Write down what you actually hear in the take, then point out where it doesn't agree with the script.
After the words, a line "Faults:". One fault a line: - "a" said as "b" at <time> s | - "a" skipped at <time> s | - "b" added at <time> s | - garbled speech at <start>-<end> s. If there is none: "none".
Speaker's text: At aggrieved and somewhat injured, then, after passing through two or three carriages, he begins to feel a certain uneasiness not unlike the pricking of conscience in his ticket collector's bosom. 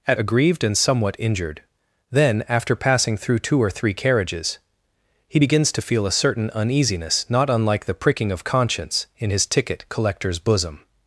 At aggrieved and somewhat injured, then, after passing through two or three carriages, he begins to feel a certain uneasiness not unlike the pricking of conscience in his ticket collector's bosom.
Faults:
none